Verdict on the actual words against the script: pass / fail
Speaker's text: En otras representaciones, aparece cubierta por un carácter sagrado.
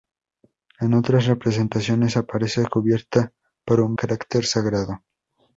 pass